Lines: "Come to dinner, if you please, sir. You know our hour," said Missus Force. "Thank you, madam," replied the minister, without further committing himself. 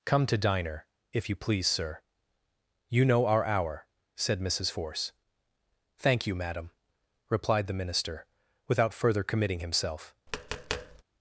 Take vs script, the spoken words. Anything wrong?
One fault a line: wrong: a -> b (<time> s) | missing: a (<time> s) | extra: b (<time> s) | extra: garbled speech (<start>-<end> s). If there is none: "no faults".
wrong: dinner -> diner (0.4 s)